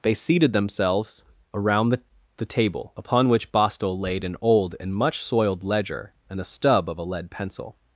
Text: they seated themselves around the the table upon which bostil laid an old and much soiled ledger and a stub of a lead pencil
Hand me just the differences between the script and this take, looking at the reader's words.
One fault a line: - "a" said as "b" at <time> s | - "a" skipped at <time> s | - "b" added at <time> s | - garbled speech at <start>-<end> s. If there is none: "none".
none